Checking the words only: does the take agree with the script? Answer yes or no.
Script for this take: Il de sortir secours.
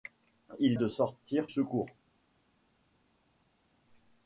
yes